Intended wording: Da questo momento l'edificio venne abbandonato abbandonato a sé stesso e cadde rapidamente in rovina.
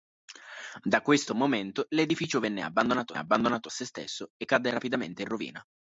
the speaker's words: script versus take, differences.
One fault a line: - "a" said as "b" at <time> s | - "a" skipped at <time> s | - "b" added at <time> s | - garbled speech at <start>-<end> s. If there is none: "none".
none